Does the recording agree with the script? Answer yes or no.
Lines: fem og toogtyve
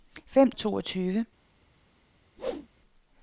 yes